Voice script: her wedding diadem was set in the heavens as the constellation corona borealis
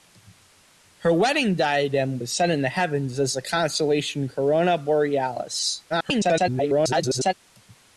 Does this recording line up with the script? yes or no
no